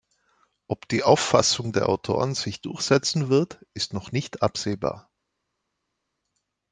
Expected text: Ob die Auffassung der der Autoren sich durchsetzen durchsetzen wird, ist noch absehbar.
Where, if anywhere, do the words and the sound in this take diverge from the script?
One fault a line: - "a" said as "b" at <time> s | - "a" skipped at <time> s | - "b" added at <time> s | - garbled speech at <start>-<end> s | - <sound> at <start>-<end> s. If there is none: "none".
- "der" skipped at 1.9 s
- "durchsetzen" skipped at 3.3 s
- "nicht" added at 4.1 s